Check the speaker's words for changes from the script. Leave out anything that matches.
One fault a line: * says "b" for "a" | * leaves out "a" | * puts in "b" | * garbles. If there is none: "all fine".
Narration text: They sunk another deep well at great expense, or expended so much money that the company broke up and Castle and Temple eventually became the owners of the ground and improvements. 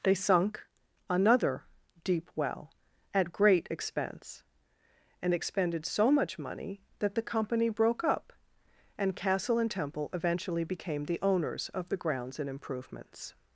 * says "and" for "or"
* says "grounds" for "ground"